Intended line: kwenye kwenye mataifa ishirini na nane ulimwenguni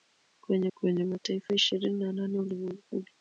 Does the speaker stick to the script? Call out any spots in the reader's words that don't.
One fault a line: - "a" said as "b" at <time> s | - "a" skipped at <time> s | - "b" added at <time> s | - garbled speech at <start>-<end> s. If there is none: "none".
none